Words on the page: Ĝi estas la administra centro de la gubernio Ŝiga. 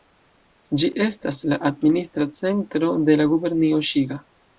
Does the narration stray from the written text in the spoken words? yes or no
no